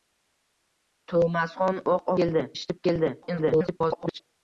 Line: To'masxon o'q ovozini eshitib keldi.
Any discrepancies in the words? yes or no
yes